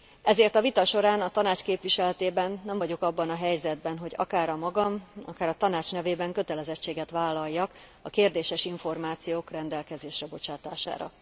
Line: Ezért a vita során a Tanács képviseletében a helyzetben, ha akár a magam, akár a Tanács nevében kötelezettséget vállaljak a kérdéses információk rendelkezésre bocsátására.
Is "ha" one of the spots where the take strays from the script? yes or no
yes